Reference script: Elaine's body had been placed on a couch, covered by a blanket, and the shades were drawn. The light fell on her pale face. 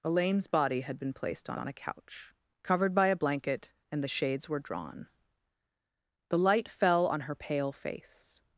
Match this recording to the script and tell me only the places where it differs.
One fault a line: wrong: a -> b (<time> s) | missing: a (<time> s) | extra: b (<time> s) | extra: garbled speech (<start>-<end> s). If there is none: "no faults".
extra: on (1.6 s)